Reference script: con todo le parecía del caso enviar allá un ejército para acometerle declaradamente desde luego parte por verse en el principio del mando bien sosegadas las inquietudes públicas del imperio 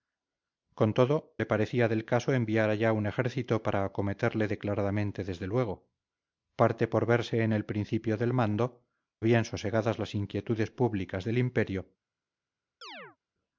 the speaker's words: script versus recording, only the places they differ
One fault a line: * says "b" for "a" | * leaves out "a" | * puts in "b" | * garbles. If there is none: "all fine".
all fine